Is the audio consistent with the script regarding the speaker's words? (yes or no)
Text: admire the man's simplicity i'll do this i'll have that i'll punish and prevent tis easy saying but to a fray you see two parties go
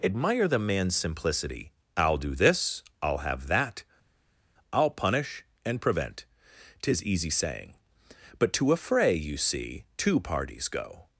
yes